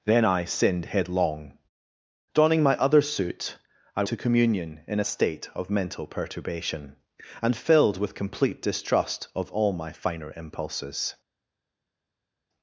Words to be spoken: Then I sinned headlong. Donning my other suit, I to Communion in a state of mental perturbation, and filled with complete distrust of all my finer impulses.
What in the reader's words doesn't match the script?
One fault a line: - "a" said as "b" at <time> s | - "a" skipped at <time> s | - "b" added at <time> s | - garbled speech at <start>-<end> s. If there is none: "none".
none